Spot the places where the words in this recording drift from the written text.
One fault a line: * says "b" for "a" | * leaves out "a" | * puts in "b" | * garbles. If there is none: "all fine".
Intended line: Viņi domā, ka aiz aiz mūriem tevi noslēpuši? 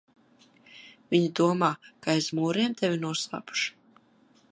* leaves out "aiz"